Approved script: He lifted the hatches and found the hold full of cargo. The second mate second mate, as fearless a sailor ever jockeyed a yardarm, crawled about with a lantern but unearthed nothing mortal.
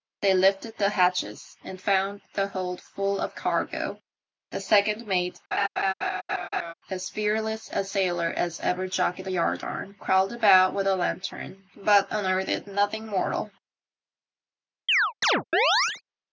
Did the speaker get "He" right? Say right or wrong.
wrong